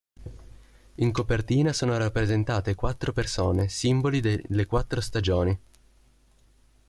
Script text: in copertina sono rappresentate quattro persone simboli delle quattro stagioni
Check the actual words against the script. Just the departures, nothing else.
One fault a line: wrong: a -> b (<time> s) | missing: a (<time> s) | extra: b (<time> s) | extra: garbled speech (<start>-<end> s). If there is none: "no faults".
no faults